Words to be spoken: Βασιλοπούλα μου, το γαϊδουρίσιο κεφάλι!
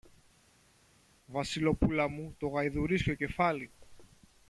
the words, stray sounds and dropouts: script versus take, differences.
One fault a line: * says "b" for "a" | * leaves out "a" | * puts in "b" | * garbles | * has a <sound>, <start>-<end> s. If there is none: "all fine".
all fine